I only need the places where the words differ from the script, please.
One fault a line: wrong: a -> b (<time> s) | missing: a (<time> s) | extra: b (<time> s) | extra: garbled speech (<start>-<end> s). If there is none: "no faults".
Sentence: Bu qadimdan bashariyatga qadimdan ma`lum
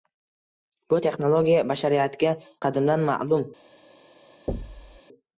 wrong: qadimdan -> texnologiya (1.0 s)